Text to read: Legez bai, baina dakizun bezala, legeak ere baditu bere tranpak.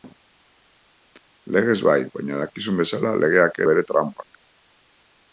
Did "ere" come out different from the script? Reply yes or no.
yes